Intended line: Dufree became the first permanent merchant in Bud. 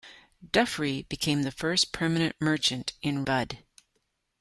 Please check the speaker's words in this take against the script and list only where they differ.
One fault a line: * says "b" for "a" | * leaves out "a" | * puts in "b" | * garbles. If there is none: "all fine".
all fine